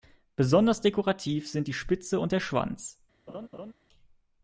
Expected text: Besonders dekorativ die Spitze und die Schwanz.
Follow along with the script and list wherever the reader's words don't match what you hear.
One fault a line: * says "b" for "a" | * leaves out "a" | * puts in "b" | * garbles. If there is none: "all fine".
* puts in "sind"
* says "der" for "die"